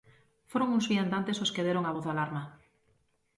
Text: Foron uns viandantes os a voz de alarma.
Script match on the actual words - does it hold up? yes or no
no